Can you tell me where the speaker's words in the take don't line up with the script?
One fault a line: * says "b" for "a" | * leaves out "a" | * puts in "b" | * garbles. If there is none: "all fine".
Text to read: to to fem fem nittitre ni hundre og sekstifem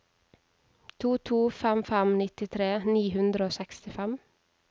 all fine